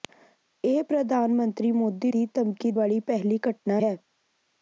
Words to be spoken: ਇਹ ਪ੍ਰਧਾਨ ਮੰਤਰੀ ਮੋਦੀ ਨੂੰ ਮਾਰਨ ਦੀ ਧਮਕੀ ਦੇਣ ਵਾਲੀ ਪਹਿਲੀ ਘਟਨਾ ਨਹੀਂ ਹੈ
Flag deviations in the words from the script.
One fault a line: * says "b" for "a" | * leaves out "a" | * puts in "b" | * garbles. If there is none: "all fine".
* leaves out "ਨੂੰ ਮਾਰਨ"
* leaves out "ਦੇਣ"
* leaves out "ਨਹੀਂ"